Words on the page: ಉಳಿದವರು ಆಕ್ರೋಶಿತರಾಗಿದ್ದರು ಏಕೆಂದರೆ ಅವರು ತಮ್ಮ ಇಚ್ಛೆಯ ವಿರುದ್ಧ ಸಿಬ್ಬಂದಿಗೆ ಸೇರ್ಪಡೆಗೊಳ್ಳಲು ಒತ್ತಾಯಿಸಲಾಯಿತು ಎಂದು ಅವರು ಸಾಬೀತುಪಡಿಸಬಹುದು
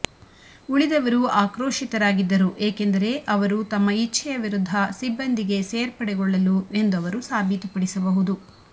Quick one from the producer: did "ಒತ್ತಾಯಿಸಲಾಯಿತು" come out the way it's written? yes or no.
no